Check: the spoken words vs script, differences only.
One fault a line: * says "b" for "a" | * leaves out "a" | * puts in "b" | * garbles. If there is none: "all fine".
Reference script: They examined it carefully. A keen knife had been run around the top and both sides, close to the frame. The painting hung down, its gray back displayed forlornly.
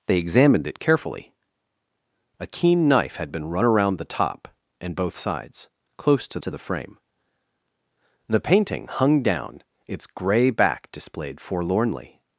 * puts in "to"